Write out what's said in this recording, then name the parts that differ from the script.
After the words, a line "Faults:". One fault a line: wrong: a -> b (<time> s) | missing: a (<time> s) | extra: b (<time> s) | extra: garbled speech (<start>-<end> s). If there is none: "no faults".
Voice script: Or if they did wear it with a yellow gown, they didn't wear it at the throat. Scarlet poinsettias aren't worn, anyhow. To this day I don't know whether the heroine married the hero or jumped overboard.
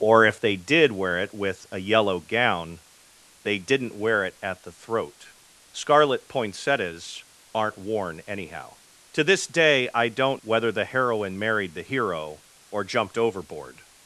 Or if they did wear it with a yellow gown, they didn't wear it at the throat. Scarlet poinsettias aren't worn, anyhow. To this day I don't whether the heroine married the hero or jumped overboard.
Faults:
missing: know (10.4 s)